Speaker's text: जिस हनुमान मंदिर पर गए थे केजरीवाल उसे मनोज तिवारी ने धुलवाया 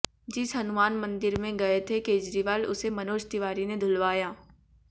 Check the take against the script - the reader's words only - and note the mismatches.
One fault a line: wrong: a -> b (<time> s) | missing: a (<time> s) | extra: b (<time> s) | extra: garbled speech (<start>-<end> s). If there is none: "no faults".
wrong: पर -> में (1.4 s)